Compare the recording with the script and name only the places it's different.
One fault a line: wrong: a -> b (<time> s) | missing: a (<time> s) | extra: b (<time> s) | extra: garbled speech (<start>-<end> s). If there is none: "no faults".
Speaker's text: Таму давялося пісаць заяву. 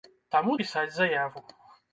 missing: давялося (0.5 s)